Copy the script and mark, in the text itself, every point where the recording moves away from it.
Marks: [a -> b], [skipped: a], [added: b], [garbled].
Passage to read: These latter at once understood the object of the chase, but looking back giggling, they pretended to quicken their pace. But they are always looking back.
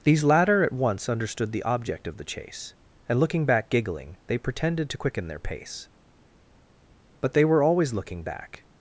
These latter at once understood the object of the chase, [but -> and] looking back giggling, they pretended to quicken their pace. But they [are -> were] always looking back.